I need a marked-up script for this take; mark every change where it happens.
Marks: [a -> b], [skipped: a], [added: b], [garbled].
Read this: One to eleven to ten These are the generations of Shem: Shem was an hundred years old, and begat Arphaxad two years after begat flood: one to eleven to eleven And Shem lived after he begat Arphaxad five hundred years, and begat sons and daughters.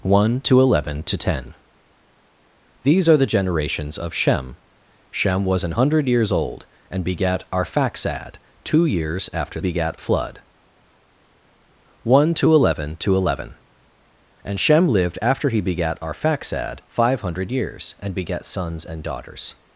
One to eleven to ten These are the generations of Shem: Shem was an hundred years old, and begat Arphaxad two years after begat flood: one to eleven to eleven And Shem lived after he begat Arphaxad five hundred years, and begat sons and daughters.